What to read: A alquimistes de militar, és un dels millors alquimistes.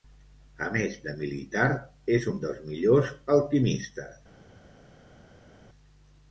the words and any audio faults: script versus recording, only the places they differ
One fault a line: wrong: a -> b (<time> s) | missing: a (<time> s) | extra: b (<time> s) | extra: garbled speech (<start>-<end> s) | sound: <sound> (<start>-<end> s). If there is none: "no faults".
wrong: alquimistes -> més (0.8 s)